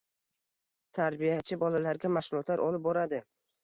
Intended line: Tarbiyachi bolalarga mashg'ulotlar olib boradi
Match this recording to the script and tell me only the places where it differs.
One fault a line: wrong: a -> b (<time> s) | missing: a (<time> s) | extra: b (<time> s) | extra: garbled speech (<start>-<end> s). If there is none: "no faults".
no faults